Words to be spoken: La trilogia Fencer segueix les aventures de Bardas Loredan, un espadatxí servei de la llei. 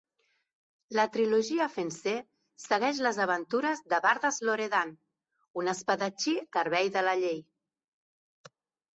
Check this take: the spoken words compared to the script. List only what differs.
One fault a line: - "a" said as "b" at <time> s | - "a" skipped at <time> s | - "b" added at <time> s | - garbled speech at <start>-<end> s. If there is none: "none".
none